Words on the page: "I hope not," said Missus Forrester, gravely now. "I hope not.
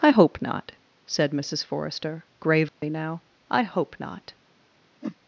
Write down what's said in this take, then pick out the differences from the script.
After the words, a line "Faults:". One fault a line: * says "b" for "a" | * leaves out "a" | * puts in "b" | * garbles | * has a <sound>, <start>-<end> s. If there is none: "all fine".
"I hope not," said Missus Forrester, gravely now. "I hope not.
Faults:
* has a dropout, 2.7-2.8 s
* has a whoosh, 5.0-5.2 s